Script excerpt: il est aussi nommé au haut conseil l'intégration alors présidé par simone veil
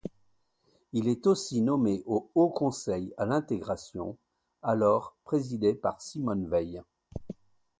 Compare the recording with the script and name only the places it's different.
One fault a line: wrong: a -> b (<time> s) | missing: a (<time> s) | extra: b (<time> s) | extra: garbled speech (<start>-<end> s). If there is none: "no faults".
extra: à (3.2 s)